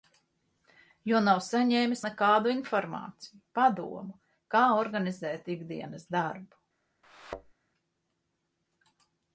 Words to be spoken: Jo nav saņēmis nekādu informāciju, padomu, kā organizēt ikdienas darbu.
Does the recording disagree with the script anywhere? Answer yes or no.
no